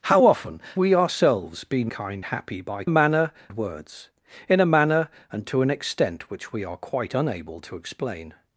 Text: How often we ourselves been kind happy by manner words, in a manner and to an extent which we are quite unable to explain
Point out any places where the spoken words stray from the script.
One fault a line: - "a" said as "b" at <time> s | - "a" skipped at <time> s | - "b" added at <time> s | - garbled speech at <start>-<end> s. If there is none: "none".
none